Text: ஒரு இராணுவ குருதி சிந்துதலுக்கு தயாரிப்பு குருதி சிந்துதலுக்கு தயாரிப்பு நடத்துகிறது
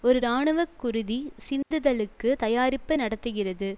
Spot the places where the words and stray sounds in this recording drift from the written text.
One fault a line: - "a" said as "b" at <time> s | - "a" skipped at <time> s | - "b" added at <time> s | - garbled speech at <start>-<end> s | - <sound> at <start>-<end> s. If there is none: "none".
- dropout at 1.6-1.7 s
- "குருதி சிந்துதலுக்கு தயாரிப்பு" skipped at 2.9 s